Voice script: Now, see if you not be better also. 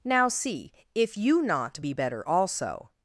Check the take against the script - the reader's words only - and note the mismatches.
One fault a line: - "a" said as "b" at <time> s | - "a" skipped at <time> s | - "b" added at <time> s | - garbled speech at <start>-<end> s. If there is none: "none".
none